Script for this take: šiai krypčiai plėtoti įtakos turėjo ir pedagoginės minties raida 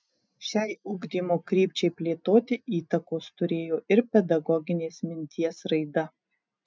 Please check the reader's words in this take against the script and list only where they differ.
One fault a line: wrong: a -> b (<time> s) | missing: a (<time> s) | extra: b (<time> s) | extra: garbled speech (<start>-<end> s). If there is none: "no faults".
extra: ugdymo (0.9 s)